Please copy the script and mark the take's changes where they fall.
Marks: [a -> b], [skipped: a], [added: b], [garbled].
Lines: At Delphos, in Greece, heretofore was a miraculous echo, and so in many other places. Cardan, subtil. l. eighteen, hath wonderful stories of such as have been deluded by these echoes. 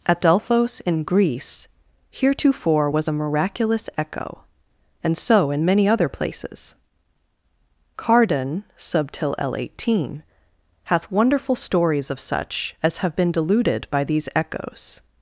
At Delphos, in Greece, heretofore was a miraculous echo, and so in many other places. Cardan, subtil. l. eighteen, hath wonderful stories of such as have been deluded by these echoes.